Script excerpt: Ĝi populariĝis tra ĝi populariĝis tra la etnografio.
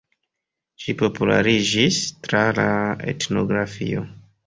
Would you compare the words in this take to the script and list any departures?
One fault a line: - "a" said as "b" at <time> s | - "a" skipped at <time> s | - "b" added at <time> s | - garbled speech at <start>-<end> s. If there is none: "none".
- "ĝi populariĝis tra" skipped at 2.5 s